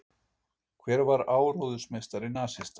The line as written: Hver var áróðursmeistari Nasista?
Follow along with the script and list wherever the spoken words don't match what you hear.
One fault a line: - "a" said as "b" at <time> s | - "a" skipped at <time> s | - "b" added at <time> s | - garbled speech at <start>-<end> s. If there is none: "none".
none